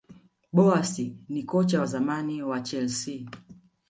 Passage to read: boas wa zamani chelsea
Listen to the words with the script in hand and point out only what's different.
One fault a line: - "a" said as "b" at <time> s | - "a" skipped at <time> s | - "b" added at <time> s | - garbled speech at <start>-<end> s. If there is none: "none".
- "ni kocha" added at 1.3 s
- "wa" added at 2.4 s